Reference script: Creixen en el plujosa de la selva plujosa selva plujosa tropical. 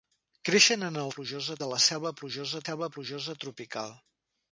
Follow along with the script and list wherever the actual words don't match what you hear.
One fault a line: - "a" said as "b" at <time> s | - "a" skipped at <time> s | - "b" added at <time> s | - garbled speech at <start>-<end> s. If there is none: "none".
none